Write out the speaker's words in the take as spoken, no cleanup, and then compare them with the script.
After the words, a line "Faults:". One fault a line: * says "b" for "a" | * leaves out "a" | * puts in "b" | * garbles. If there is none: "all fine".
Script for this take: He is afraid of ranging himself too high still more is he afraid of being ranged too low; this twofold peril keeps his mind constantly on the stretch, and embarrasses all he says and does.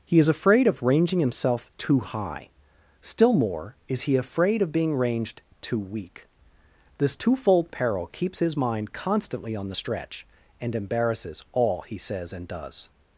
He is afraid of ranging himself too high still more is he afraid of being ranged too weak; this twofold peril keeps his mind constantly on the stretch, and embarrasses all he says and does.
Faults:
* says "weak" for "low"